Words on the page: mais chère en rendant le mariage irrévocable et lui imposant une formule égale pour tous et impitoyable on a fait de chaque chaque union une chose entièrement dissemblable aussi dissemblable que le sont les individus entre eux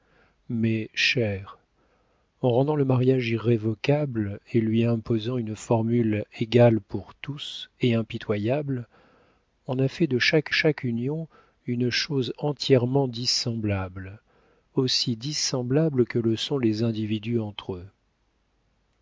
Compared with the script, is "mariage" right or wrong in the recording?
right